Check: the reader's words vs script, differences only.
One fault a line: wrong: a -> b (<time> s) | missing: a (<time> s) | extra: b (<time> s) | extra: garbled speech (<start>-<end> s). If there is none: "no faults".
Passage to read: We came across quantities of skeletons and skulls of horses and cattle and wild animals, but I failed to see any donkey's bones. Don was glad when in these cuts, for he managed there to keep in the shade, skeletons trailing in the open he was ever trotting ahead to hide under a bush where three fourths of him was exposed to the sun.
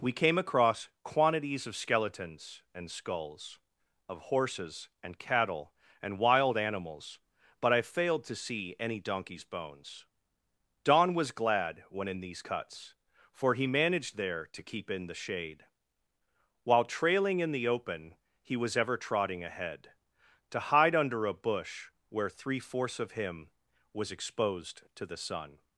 wrong: skeletons -> while (16.6 s)